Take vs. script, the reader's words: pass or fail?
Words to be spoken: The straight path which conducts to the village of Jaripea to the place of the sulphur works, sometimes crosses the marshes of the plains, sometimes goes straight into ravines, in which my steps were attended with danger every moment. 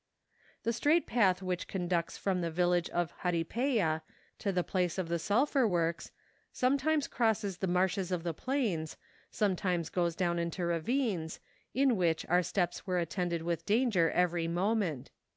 fail